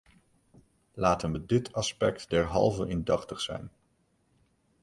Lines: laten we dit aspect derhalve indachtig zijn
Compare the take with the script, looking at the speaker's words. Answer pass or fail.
pass